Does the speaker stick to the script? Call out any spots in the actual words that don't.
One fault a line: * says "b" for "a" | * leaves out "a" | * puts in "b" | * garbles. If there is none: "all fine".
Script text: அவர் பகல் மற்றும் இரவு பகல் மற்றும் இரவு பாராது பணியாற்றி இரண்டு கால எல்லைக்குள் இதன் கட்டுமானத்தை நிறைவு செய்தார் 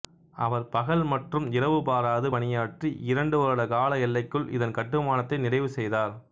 * leaves out "பகல் மற்றும் இரவு"
* puts in "வருட"